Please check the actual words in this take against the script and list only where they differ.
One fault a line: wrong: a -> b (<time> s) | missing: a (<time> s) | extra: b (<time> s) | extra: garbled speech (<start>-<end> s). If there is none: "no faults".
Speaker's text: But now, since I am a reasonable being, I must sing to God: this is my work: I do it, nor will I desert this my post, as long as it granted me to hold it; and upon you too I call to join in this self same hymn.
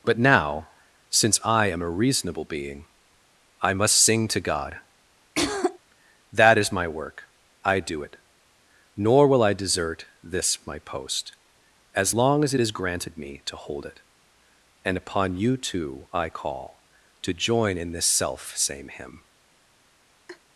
wrong: this -> that (6.3 s)
extra: is (12.6 s)